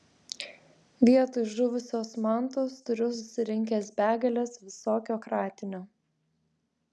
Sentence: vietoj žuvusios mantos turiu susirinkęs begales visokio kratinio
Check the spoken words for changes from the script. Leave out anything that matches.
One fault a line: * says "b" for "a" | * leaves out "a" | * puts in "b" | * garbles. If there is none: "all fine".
all fine